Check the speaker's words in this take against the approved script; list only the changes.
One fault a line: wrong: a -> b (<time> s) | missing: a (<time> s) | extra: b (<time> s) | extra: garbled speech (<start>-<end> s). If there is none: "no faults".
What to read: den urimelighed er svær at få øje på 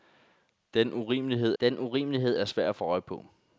extra: den urimelighed (1.6 s)